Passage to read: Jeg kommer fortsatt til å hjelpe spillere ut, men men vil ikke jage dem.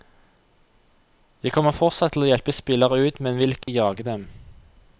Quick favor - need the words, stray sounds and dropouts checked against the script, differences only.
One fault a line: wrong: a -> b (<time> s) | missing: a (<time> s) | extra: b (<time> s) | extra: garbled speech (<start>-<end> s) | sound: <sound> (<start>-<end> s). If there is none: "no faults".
missing: men (3.4 s)
sound: dropout (3.6-3.7 s)